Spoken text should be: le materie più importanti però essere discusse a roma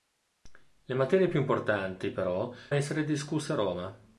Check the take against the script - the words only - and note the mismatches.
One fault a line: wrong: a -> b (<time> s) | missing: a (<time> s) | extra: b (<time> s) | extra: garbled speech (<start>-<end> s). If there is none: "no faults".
no faults